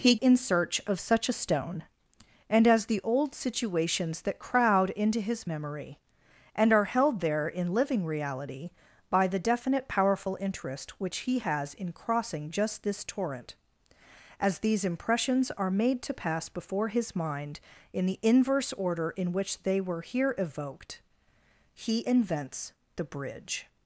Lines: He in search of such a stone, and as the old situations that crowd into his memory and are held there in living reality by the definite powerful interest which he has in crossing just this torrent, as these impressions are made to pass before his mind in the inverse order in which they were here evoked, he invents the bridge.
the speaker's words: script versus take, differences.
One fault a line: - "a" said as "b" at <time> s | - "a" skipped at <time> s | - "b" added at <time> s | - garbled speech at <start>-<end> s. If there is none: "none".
none